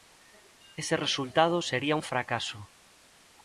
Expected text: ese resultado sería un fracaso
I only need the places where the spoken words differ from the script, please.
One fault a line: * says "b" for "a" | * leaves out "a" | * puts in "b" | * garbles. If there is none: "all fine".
all fine